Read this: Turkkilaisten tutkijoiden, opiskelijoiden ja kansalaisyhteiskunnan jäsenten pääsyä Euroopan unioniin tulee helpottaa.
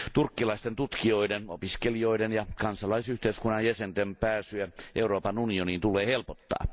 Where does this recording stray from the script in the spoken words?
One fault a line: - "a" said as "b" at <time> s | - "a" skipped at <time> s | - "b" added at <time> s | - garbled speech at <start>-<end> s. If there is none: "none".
none